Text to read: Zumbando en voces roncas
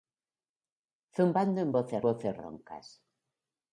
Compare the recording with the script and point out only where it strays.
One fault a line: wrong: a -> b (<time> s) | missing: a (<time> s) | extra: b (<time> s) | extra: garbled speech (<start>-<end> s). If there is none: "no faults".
extra: voces (2.0 s)